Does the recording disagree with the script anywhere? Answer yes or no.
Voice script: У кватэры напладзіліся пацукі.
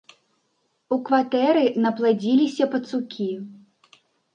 no